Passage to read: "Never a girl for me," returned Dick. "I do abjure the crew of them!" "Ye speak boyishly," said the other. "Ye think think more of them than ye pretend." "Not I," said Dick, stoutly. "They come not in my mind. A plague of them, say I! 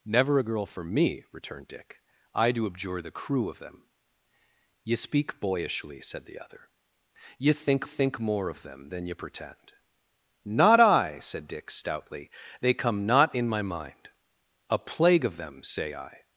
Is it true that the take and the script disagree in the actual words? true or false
false